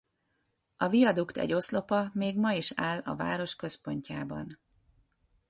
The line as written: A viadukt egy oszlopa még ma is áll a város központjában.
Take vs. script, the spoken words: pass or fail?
pass